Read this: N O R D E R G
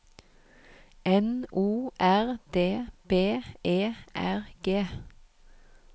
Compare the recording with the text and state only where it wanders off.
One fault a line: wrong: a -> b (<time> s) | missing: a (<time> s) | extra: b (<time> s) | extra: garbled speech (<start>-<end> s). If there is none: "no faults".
extra: B (3.1 s)